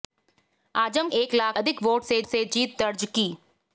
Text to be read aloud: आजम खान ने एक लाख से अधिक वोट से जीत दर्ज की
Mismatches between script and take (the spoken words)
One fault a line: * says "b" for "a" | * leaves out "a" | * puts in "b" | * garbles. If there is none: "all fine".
* leaves out "खान ने"
* leaves out "से"
* puts in "से"